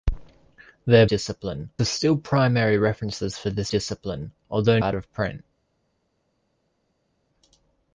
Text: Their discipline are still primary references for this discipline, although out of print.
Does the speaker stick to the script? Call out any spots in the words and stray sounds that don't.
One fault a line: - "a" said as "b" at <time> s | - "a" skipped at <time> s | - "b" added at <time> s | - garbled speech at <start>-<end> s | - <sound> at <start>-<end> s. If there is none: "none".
none